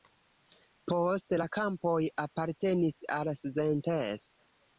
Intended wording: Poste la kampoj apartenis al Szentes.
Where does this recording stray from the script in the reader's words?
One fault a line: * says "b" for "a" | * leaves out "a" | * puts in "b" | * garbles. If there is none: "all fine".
all fine